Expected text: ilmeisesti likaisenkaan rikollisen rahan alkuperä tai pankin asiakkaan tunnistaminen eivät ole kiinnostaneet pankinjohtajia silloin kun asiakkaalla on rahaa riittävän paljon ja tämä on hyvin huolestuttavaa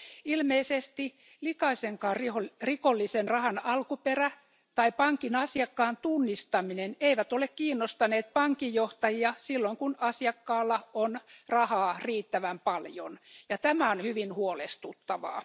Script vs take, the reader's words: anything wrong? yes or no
no